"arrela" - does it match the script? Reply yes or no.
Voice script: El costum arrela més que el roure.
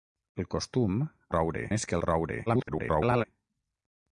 no